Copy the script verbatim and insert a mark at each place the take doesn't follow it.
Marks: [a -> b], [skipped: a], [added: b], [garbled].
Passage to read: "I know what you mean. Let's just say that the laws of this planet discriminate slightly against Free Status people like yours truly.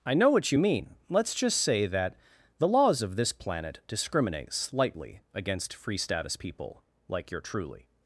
"I know what you mean. Let's just say that the laws of this planet discriminate slightly against Free Status people like [yours -> your] truly.